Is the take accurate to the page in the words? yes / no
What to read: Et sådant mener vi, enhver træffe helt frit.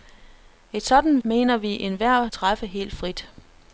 yes